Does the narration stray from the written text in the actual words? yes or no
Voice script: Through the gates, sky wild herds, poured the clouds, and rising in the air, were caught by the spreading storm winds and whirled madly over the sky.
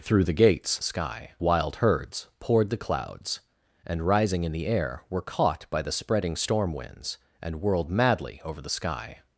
no